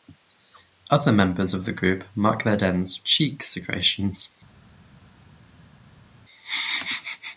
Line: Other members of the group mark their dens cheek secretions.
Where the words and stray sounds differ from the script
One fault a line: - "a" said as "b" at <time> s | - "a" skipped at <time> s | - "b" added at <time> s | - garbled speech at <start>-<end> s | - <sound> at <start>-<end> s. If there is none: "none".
none